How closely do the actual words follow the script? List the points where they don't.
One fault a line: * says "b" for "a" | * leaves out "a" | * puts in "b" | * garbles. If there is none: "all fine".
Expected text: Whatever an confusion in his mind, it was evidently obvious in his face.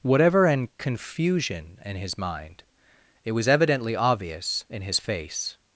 all fine